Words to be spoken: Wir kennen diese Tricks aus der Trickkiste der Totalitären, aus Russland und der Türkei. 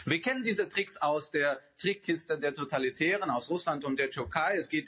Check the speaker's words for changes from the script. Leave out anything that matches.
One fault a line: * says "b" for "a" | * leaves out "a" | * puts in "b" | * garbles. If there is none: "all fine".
all fine